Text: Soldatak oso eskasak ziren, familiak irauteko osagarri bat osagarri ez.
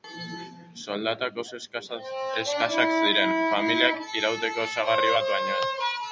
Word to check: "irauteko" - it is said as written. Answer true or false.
true